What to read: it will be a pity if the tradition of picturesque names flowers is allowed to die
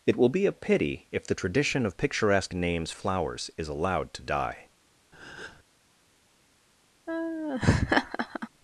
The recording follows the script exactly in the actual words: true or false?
true